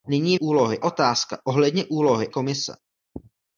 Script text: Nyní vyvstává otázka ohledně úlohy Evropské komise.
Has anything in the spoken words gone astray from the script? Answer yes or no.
yes